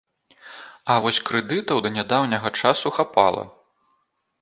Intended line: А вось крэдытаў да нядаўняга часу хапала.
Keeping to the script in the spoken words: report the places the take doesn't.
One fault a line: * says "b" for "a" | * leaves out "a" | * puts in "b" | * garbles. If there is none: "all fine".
all fine